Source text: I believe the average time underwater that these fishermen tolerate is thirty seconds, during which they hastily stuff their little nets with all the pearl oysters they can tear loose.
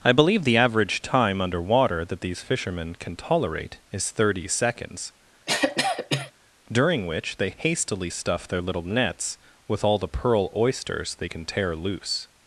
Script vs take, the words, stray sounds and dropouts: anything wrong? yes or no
yes